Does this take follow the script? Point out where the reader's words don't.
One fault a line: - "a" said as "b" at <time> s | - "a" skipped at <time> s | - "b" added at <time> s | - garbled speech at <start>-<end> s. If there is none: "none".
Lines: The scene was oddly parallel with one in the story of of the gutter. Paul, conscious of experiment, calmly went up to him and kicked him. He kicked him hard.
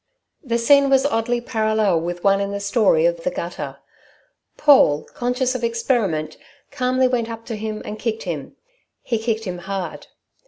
none